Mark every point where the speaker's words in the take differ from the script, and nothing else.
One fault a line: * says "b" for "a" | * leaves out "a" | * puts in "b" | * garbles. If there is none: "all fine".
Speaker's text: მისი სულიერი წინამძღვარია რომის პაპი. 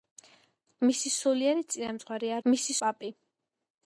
* says "მისი" for "რომის"